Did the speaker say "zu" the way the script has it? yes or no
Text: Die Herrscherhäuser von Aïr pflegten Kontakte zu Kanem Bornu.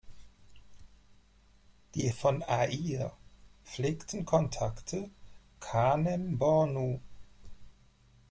no